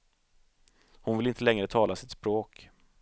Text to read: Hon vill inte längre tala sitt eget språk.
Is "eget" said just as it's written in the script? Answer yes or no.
no